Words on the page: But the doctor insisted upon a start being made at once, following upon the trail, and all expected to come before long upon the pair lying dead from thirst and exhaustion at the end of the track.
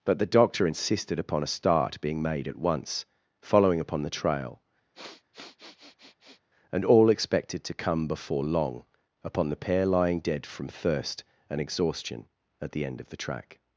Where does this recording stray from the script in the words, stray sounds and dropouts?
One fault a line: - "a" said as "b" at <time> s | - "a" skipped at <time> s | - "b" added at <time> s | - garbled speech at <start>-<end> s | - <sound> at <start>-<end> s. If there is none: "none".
- sniff at 4.9-6.4 s